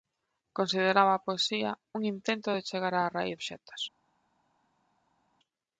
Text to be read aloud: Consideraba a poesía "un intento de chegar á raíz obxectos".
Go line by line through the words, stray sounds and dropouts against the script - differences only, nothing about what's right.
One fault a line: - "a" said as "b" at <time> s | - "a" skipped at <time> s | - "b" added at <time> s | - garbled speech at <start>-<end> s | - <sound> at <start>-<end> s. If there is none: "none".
none